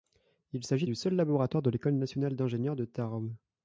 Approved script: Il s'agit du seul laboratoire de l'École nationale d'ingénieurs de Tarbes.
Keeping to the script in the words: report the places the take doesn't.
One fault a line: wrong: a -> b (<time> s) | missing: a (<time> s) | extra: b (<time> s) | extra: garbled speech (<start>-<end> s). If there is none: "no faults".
no faults